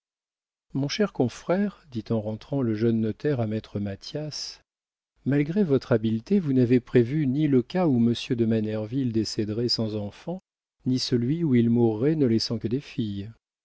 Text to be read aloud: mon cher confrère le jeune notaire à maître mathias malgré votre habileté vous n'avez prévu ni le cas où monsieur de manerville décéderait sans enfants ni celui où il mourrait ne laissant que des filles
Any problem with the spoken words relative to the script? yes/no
yes